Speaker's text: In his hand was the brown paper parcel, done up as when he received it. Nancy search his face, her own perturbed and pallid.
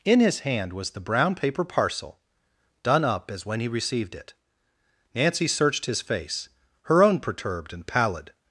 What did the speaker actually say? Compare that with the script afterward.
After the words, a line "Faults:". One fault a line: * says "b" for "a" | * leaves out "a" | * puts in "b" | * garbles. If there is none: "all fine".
In his hand was the brown paper parcel, done up as when he received it. Nancy searched his face, her own perturbed and pallid.
Faults:
* says "searched" for "search"